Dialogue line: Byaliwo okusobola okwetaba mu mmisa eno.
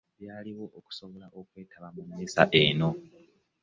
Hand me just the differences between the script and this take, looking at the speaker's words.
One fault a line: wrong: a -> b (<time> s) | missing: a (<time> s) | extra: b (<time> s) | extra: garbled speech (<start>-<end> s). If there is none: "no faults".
no faults